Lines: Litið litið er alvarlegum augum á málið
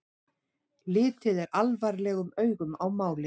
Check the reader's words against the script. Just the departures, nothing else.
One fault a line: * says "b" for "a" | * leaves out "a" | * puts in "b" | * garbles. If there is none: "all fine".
* leaves out "litið"